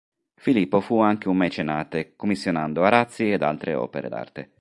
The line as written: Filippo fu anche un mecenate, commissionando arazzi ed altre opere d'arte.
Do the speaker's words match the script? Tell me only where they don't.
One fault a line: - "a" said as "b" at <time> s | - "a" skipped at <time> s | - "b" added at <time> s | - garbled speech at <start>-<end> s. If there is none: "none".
none